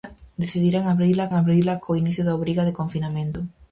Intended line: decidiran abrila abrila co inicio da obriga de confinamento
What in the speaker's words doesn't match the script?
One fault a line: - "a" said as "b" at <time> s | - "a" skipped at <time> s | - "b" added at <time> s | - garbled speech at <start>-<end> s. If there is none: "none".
none